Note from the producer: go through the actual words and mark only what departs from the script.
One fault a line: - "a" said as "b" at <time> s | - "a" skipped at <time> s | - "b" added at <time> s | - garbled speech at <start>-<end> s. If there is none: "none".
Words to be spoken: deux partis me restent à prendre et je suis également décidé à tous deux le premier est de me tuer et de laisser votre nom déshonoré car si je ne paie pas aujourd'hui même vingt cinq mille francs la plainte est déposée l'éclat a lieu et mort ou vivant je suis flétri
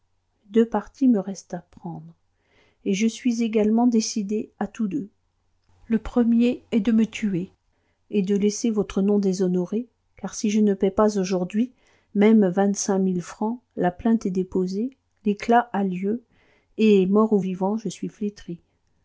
none